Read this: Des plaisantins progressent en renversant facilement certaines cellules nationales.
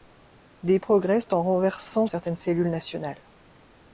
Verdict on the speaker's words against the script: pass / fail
fail